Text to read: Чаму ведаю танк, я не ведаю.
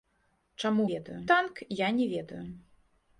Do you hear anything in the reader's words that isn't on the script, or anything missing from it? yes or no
no